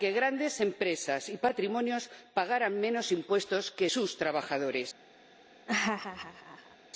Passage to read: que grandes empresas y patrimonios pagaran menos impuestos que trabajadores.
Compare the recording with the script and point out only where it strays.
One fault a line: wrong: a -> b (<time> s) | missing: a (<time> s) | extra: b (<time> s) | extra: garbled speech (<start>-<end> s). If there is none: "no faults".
extra: sus (3.9 s)